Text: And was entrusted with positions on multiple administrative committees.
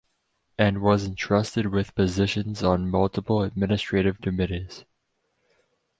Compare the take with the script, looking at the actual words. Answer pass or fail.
pass